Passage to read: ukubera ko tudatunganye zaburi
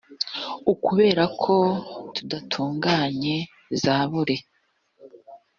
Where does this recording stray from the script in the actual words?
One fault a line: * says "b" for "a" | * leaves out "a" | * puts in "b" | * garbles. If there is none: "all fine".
all fine